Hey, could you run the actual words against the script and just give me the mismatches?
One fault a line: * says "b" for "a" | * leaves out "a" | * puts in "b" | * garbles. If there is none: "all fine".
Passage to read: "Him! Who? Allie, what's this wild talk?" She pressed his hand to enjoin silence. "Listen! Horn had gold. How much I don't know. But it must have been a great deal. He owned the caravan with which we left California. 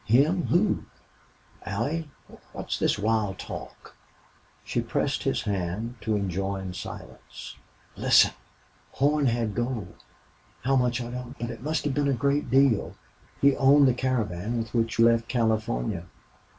* leaves out "know"
* leaves out "we"